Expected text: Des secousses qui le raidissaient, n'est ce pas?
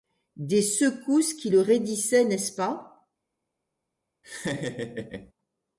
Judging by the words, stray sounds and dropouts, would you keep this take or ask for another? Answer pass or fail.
fail